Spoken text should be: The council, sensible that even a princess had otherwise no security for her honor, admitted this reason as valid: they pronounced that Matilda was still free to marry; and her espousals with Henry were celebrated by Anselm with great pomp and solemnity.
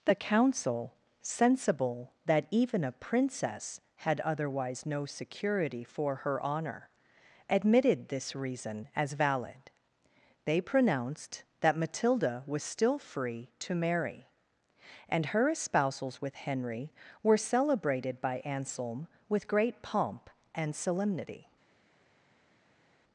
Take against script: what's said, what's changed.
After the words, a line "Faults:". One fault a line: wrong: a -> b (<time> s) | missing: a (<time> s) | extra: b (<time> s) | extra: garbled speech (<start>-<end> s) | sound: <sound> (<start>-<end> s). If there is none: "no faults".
The council, sensible that even a princess had otherwise no security for her honor, admitted this reason as valid: they pronounced that Matilda was still free to marry; and her espousals with Henry were celebrated by Anselm with great pomp and solemnity.
Faults:
no faults